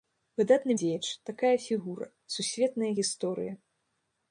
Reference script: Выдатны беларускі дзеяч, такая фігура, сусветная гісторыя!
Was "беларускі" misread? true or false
true